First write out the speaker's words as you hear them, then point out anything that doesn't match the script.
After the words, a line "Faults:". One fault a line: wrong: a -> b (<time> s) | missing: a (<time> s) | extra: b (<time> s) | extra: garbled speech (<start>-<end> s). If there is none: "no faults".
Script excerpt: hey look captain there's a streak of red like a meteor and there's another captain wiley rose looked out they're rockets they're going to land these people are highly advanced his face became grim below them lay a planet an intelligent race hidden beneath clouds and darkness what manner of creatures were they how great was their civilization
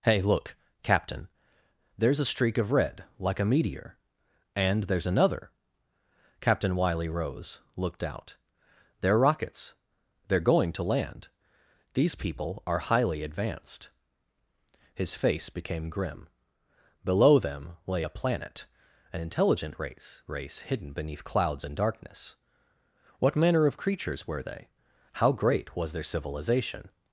hey look captain there's a streak of red like a meteor and there's another captain wiley rose looked out they're rockets they're going to land these people are highly advanced his face became grim below them lay a planet an intelligent race race hidden beneath clouds and darkness what manner of creatures were they how great was their civilization
Faults:
extra: race (20.3 s)